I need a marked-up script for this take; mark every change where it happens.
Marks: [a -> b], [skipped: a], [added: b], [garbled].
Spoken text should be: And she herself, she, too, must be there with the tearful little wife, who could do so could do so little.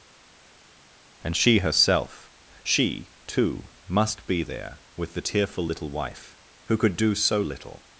And she herself, she, too, must be there with the tearful little wife, who could do so [skipped: could do so] little.